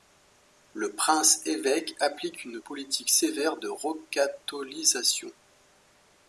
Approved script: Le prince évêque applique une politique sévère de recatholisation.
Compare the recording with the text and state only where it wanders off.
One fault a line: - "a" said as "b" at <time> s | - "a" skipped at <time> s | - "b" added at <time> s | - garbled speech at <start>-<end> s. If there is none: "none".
none